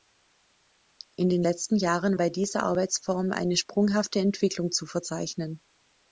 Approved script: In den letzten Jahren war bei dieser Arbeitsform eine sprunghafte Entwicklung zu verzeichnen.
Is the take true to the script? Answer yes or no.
no